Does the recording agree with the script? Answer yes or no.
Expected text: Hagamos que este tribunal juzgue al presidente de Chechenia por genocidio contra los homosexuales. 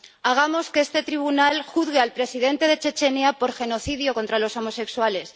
yes